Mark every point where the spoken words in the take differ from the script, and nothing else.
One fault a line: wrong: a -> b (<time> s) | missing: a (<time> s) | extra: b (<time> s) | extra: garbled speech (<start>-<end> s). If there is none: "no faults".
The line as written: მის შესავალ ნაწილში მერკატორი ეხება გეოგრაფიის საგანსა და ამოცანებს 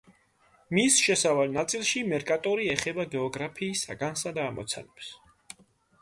no faults